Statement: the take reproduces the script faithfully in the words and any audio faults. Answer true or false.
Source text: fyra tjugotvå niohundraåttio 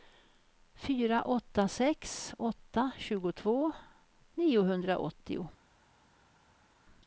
false